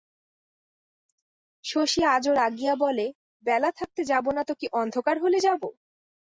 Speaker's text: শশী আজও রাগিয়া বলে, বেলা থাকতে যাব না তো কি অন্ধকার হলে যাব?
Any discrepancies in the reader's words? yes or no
no